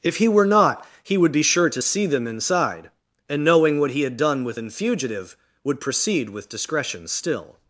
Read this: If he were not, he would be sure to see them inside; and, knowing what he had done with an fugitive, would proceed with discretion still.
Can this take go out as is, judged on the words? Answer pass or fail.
pass